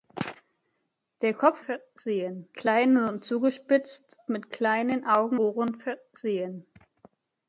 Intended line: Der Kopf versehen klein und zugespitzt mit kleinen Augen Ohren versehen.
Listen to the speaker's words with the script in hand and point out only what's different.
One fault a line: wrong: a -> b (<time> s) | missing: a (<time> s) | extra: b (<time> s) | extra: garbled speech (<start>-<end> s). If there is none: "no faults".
no faults